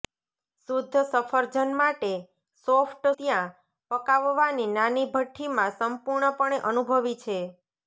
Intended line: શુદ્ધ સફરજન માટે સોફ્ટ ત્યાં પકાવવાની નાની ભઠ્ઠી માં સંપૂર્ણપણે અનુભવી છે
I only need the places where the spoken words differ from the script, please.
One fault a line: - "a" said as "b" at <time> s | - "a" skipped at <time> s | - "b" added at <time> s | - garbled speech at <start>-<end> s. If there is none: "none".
none